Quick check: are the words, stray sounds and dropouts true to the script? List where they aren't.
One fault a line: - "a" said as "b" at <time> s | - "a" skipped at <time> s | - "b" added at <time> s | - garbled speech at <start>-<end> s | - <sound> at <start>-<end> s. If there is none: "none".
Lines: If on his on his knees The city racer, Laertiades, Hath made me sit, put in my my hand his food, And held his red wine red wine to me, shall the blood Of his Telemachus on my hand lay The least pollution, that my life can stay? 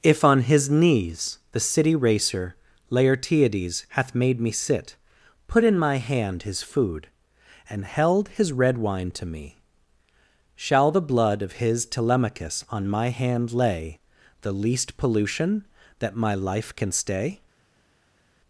- "on his" skipped at 0.7 s
- "my" skipped at 6.0 s
- "red wine" skipped at 9.1 s